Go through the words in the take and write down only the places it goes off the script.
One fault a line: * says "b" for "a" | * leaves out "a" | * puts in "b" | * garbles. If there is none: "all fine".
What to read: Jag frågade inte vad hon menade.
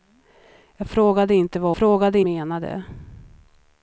* says "frågade" for "hon"